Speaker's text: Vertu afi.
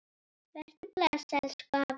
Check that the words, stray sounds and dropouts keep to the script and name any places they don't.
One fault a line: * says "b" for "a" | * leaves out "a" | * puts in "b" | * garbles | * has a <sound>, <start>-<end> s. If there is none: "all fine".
* puts in "bless elsku"